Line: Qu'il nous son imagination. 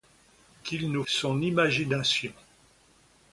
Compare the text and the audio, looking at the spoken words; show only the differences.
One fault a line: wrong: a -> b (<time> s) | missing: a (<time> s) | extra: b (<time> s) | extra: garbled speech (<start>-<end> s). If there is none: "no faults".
no faults